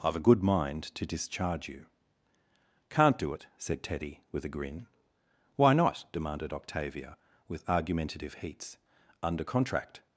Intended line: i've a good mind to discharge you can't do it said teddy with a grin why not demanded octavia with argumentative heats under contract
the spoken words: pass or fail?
pass